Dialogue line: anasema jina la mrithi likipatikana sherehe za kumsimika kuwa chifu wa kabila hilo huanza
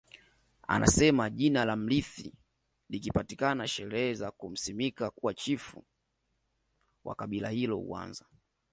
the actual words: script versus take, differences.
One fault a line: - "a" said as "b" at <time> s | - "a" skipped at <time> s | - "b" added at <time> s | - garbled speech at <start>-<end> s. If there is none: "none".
none